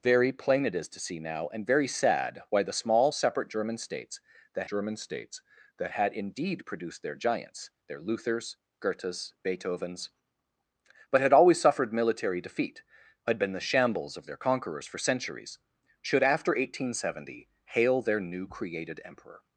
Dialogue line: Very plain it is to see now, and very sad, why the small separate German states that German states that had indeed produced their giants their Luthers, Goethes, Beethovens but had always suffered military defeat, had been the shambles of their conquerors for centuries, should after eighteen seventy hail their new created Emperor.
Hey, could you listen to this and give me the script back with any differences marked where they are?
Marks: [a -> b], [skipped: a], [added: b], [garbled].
Very plain it is to see now, and very sad, why the small separate German states that German states that had indeed produced their giants their Luthers, Goethes, Beethovens but had always suffered military defeat, had been the shambles of their conquerors for centuries, should after eighteen seventy hail their new created Emperor.